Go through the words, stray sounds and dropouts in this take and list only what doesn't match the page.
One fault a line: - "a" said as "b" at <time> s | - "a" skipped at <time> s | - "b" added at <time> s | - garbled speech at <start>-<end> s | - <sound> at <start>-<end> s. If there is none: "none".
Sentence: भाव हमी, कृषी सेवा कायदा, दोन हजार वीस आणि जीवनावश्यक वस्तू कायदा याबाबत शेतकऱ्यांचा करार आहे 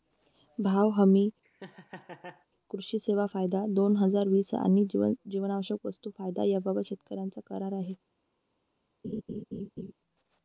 - laugh at 1.4-2.5 s
- laugh at 9.0-9.9 s